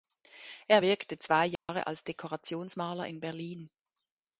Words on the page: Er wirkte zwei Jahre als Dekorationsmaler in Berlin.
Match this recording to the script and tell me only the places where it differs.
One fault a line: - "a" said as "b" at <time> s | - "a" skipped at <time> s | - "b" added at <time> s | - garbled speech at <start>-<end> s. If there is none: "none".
none